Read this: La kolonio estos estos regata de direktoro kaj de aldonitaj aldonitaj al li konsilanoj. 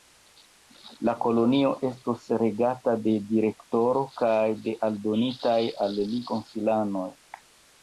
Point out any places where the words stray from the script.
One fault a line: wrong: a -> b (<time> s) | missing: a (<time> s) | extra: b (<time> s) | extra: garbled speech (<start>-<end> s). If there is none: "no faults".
missing: estos (2.2 s)
missing: aldonitaj (5.6 s)